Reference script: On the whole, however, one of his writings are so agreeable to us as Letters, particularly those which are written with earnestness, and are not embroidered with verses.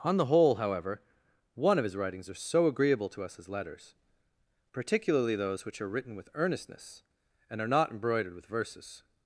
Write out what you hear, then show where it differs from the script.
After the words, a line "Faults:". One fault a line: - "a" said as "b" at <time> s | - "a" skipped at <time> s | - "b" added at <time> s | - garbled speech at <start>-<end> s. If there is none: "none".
On the whole, however, one of his writings are so agreeable to us as Letters, particularly those which are written with earnestness, and are not embroidered with verses.
Faults:
none